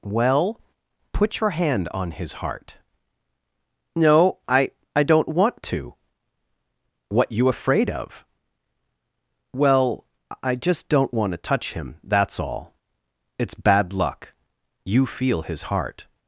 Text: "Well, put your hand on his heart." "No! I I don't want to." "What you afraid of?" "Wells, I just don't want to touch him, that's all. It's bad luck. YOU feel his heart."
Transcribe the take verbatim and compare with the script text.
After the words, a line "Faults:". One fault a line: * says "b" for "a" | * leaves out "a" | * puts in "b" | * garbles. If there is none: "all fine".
"Well, put your hand on his heart." "No! I I don't want to." "What you afraid of?" "Well, I just don't want to touch him, that's all. It's bad luck. YOU feel his heart."
Faults:
* says "Well" for "Wells"